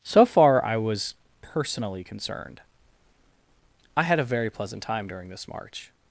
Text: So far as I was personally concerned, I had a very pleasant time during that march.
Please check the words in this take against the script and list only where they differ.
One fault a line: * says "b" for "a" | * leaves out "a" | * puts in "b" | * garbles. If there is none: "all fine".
* leaves out "as"
* says "this" for "that"